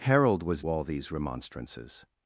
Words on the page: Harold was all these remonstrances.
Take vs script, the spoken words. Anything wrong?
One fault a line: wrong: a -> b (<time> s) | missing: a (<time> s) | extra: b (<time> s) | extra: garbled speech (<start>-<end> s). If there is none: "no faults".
no faults